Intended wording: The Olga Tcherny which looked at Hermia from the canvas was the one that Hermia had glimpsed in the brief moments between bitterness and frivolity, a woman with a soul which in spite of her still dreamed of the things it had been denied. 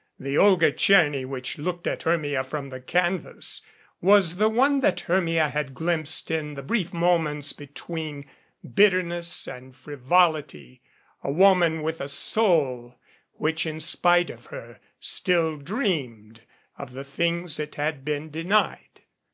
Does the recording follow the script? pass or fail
pass